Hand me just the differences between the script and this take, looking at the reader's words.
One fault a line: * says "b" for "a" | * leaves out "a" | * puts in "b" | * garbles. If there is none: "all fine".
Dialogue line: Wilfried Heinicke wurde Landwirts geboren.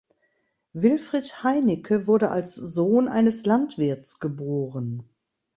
* puts in "als Sohn eines"